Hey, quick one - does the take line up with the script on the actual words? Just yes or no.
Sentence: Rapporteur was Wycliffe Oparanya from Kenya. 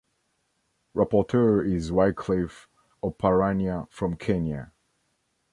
no